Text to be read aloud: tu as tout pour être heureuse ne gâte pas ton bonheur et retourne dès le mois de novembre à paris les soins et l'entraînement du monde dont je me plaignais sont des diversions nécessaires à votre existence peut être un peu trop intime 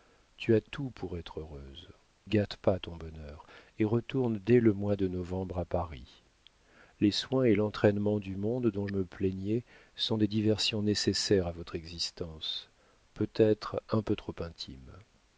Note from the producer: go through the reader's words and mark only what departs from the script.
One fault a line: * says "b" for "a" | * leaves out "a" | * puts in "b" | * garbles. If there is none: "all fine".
* leaves out "ne"
* leaves out "je"